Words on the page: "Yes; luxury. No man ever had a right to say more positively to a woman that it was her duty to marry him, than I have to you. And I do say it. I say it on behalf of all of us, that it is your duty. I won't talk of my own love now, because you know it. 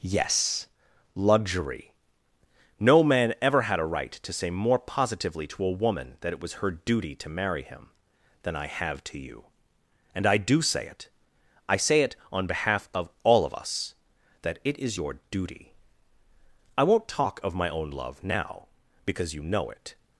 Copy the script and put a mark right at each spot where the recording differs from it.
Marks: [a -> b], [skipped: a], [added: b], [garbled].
"Yes; luxury. No man ever had a right to say more positively to a woman that it was her duty to marry him, than I have to you. And I do say it. I say it on behalf of all of us, that it is your duty. I won't talk of my own love now, because you know it.